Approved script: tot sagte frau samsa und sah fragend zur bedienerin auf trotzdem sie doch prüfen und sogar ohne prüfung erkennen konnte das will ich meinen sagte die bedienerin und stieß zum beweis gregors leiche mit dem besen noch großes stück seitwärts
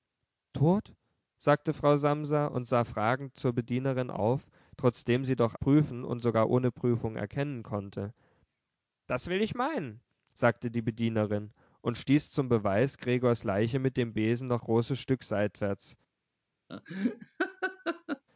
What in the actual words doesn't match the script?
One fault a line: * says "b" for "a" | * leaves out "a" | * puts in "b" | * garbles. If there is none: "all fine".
all fine